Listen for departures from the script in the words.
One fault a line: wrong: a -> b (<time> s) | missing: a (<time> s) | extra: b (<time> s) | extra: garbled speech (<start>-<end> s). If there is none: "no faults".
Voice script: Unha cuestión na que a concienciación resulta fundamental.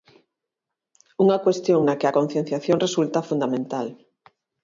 no faults